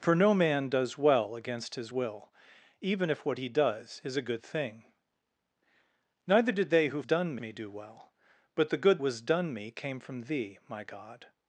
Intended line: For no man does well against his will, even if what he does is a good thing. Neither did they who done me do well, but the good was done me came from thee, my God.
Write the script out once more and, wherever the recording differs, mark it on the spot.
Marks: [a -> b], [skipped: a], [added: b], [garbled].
For no man does well against his will, even if what he does is a good thing. Neither did they who done me do well, but the good was done me came from thee, my God.